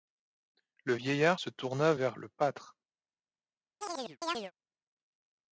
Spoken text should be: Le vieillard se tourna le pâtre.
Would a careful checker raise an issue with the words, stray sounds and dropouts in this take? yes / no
yes